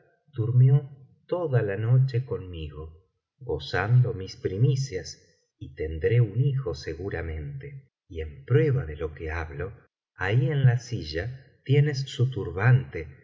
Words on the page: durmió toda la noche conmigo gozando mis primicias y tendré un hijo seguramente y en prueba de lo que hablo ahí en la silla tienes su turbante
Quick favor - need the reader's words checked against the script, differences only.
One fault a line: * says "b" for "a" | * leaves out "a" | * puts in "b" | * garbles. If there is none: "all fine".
all fine